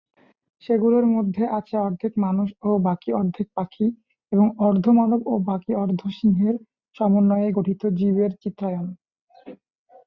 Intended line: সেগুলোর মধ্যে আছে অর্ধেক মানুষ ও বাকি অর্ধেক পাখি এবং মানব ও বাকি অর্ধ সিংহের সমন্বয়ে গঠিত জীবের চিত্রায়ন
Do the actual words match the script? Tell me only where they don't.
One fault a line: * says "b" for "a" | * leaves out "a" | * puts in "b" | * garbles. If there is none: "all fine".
* puts in "অর্ধ"